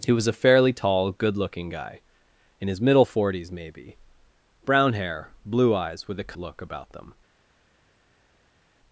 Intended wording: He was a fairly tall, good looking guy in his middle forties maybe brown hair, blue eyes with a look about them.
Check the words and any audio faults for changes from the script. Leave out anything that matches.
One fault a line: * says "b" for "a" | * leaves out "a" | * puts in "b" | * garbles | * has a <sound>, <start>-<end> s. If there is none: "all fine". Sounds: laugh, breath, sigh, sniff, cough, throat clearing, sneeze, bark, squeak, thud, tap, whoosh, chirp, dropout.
all fine